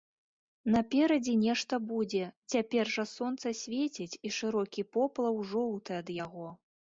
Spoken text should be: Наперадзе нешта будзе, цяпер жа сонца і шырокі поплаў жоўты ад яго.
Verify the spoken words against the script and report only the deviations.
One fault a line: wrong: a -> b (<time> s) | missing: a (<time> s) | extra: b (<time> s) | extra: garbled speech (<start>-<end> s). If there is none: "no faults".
extra: свеціць (3.6 s)